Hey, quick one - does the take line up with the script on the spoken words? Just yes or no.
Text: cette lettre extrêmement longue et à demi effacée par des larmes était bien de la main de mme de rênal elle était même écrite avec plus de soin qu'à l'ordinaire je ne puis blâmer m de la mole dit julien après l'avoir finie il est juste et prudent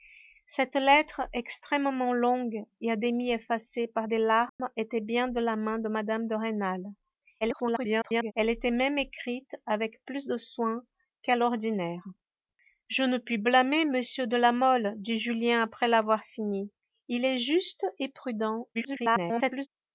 no